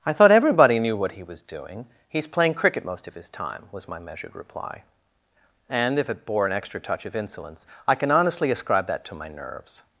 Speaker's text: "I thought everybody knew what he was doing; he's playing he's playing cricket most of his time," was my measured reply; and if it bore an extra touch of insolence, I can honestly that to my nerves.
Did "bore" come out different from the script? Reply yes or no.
no